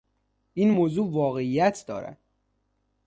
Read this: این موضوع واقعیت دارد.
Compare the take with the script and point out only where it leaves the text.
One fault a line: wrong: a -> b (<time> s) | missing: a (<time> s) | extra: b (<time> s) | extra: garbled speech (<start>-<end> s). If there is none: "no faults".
no faults